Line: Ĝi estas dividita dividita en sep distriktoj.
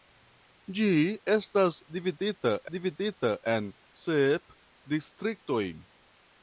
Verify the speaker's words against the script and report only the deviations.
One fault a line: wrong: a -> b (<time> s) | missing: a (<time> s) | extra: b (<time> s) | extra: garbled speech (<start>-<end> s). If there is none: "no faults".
no faults